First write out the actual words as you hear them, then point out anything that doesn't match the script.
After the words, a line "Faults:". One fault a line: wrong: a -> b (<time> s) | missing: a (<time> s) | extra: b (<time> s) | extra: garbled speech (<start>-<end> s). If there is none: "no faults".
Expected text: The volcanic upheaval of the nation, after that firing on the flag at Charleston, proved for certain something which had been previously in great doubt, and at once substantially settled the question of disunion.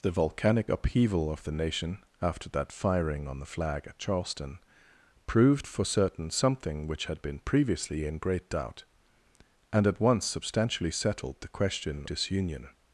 The volcanic upheaval of the nation, after that firing on the flag at Charleston, proved for certain something which had been previously in great doubt, and at once substantially settled the question disunion.
Faults:
missing: of (12.1 s)